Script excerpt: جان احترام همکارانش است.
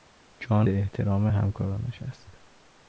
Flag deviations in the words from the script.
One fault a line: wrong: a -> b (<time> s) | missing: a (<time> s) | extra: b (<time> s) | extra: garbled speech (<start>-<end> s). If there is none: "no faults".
no faults